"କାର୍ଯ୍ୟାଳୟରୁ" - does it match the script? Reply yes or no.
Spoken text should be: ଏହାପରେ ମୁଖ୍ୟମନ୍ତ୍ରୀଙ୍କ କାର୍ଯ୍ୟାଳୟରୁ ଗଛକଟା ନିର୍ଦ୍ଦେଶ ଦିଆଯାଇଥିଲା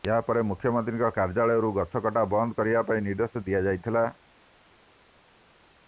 yes